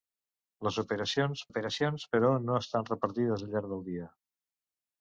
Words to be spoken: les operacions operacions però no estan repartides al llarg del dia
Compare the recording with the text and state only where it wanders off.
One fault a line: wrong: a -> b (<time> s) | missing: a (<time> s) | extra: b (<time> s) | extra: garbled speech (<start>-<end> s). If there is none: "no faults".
no faults